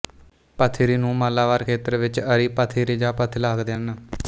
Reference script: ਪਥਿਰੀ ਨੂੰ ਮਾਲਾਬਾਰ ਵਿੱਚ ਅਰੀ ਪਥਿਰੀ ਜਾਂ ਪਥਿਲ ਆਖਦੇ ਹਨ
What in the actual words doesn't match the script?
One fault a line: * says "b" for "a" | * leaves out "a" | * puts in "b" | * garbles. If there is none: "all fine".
* puts in "ਖੇਤਰ"